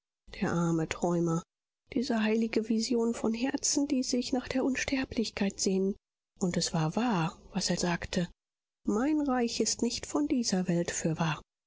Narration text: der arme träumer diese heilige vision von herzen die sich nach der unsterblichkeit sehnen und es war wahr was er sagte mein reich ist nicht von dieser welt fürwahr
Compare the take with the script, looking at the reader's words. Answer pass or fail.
pass